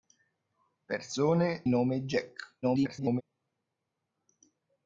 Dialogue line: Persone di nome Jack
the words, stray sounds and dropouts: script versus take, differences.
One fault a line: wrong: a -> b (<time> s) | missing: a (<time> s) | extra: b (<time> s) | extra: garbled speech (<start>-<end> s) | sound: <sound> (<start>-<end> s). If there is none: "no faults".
missing: di (1.7 s)
extra: garbled speech (2.6-3.2 s)